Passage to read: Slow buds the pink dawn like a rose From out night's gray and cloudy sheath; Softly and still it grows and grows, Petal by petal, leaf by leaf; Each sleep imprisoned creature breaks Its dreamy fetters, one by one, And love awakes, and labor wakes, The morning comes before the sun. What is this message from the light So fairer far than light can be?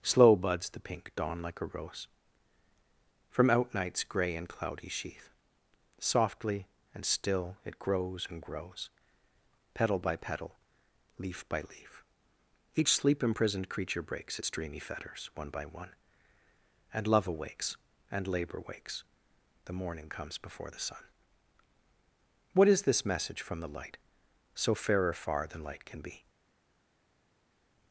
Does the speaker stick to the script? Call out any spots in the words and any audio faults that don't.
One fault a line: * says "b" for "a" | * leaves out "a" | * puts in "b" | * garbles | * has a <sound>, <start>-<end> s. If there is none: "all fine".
all fine